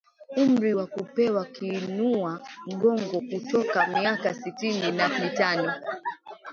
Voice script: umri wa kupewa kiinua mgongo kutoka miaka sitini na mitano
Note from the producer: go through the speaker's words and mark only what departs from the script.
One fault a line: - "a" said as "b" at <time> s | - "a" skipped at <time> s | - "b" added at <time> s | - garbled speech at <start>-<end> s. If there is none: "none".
none